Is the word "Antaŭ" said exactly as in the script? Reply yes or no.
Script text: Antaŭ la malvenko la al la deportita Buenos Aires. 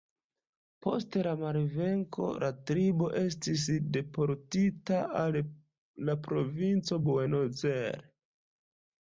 no